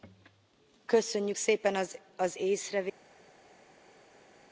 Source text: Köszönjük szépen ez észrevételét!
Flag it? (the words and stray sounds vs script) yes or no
yes